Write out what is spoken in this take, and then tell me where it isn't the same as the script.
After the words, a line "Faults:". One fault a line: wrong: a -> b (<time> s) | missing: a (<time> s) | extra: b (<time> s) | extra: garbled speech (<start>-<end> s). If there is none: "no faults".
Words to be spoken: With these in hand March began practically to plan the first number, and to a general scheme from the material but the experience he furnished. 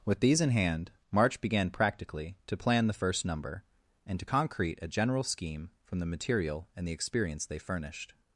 With these in hand March began practically to plan the first number, and to concrete a general scheme from the material and the experience they furnished.
Faults:
extra: concrete (4.2 s)
wrong: but -> and (6.7 s)
wrong: he -> they (7.4 s)